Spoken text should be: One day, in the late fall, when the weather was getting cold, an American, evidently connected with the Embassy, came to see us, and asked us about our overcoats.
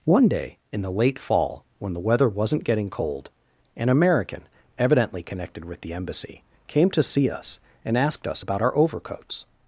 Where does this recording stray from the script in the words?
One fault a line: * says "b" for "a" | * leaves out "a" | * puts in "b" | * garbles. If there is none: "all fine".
* says "wasn't" for "was"